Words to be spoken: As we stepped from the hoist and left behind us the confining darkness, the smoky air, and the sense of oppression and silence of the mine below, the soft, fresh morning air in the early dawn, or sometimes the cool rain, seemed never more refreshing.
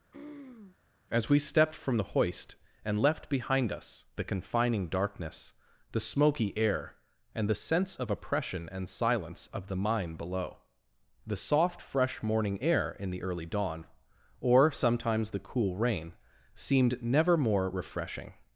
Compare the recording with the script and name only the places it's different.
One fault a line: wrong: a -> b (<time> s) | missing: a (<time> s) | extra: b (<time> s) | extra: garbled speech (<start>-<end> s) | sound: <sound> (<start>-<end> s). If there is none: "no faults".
sound: throat clearing (0.1-0.8 s)